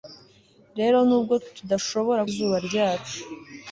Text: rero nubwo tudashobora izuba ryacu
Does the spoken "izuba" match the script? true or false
true